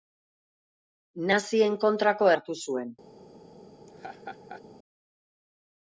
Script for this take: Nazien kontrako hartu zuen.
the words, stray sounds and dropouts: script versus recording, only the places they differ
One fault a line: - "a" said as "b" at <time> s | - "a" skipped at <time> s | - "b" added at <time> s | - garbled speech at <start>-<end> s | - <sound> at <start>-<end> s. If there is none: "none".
- laugh at 3.9-4.6 s